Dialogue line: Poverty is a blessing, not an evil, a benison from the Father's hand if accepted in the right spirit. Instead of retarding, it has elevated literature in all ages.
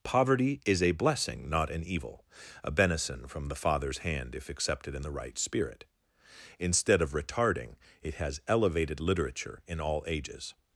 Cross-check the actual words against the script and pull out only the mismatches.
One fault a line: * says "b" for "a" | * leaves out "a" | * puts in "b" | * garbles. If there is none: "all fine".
all fine